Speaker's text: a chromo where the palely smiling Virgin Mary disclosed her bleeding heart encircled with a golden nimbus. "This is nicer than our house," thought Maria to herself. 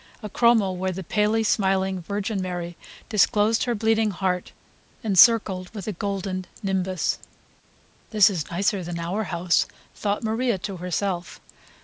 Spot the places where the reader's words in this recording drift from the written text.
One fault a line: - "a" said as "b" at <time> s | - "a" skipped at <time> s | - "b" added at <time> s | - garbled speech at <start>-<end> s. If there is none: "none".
none